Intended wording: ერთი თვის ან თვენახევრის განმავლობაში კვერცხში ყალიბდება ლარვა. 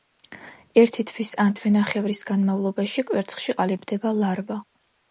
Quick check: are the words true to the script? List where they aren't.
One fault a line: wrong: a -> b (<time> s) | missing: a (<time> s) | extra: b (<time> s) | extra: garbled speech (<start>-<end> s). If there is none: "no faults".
no faults